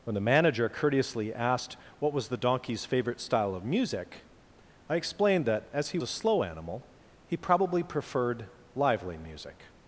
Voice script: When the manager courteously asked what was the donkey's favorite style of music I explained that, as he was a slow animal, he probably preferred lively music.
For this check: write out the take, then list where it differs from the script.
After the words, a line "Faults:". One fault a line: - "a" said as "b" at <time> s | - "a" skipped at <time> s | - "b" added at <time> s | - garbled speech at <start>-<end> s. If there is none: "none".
When the manager courteously asked what was the donkey's favorite style of music I explained that, as he a slow animal, he probably preferred lively music.
Faults:
- "was" skipped at 6.0 s